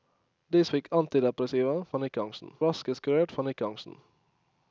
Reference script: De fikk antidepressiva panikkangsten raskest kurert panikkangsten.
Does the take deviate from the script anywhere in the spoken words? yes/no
no